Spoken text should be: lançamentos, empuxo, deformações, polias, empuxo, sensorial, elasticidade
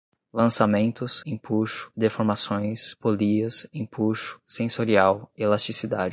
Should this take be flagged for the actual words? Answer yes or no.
no